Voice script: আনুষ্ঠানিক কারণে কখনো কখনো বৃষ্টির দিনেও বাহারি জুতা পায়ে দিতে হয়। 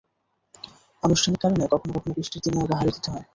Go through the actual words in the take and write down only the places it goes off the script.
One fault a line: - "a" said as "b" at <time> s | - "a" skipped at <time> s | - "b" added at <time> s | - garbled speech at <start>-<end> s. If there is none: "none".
- "জুতা পায়ে" skipped at 2.9 s